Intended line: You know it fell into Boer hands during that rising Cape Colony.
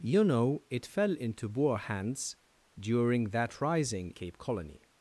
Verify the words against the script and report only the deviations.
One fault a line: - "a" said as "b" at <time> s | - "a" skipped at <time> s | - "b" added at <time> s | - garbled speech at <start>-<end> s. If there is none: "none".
none